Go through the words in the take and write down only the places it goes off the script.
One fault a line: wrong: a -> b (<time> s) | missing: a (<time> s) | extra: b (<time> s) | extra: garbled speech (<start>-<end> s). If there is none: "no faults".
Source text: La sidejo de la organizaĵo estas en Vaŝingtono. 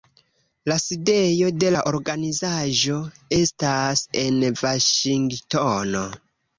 no faults